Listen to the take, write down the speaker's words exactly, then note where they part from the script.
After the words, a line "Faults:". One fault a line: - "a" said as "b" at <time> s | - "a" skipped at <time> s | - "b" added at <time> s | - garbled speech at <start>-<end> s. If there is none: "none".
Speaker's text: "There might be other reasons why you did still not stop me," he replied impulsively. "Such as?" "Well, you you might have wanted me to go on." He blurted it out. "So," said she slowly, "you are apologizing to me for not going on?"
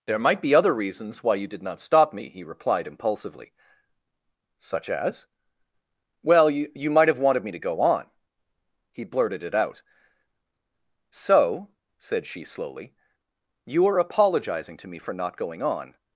"There might be other reasons why you did not stop me," he replied impulsively. "Such as?" "Well, you you might have wanted me to go on." He blurted it out. "So," said she slowly, "you are apologizing to me for not going on?"
Faults:
- "still" skipped at 1.6 s